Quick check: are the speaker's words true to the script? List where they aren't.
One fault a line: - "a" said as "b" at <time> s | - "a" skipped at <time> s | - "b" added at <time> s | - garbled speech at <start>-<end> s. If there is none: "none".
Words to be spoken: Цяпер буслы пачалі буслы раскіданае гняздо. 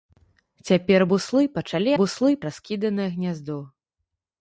none